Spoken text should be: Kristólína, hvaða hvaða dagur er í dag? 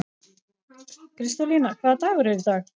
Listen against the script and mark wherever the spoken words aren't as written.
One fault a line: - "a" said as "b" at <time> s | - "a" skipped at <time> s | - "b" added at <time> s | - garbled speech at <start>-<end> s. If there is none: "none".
- "hvaða" skipped at 2.0 s